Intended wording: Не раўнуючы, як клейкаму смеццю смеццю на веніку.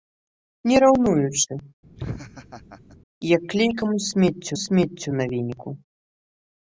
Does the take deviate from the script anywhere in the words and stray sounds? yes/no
yes